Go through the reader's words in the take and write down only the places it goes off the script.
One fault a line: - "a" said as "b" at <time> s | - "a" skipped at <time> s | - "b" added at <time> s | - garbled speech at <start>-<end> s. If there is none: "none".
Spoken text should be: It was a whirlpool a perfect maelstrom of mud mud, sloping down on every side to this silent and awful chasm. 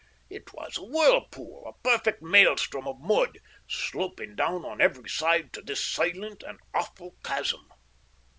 - "mud" skipped at 3.4 s